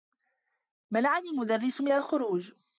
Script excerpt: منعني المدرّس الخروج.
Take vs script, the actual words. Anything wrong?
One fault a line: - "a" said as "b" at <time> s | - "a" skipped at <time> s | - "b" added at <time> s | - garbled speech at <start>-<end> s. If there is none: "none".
- "من" added at 1.8 s